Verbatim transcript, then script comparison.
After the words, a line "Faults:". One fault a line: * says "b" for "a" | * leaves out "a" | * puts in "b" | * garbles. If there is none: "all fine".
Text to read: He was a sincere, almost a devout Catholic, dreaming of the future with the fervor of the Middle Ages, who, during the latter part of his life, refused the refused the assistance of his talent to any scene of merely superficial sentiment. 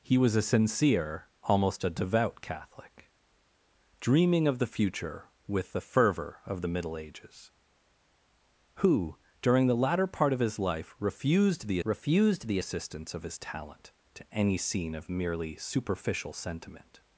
He was a sincere, almost a devout Catholic, dreaming of the future with the fervor of the Middle Ages, who, during the latter part of his life, refused the refused the assistance of his talent to any scene of merely superficial sentiment.
Faults:
all fine